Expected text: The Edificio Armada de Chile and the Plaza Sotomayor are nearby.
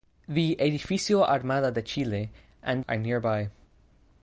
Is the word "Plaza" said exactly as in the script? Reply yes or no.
no